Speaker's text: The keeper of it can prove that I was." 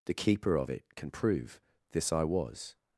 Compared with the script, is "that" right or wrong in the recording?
wrong